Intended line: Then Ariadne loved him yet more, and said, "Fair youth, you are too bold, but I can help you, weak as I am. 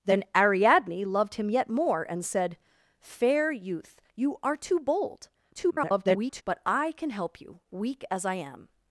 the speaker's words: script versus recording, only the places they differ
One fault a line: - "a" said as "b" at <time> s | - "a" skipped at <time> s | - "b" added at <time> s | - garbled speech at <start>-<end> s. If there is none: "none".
- garbled speech at 5.5-6.4 s